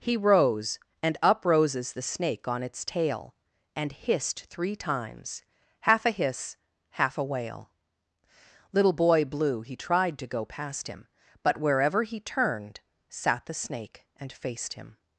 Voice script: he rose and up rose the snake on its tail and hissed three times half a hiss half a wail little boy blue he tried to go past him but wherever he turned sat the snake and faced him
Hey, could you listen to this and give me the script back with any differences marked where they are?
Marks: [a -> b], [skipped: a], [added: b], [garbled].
he rose and up [rose -> roses] the snake on its tail and hissed three times half a hiss half a wail little boy blue he tried to go past him but wherever he turned sat the snake and faced him